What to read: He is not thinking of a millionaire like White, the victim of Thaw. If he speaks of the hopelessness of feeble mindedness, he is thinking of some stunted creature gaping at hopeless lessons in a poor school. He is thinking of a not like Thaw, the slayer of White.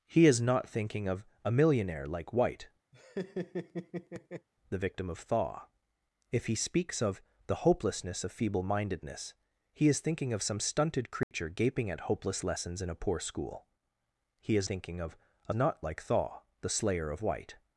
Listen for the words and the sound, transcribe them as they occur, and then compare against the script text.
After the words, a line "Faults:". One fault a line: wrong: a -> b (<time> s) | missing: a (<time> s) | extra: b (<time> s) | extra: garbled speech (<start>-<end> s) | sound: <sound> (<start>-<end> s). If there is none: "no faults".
He is not thinking of a millionaire like White, the victim of Thaw. If he speaks of the hopelessness of feeble mindedness, he is thinking of some stunted creature gaping at hopeless lessons in a poor school. He is thinking of a not like Thaw, the slayer of White.
Faults:
sound: laugh (2.9-4.5 s)
sound: dropout (11.2-11.3 s)